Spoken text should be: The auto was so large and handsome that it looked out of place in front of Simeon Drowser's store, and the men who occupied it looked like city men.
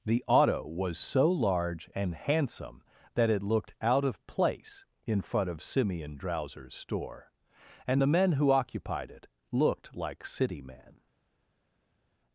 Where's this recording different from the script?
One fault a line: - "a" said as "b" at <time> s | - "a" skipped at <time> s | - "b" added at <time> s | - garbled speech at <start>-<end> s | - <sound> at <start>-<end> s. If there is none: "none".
none